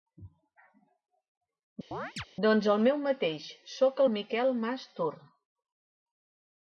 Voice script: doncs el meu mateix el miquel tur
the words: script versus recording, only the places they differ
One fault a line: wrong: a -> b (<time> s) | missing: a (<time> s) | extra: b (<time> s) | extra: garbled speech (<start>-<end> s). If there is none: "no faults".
extra: soc (3.8 s)
extra: mas (4.6 s)